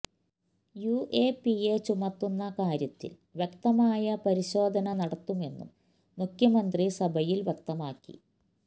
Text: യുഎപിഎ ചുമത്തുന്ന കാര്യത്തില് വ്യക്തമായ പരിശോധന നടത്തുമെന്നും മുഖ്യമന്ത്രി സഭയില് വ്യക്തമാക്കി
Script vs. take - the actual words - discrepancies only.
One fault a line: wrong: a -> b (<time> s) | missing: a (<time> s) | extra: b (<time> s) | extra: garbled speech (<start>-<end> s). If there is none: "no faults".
no faults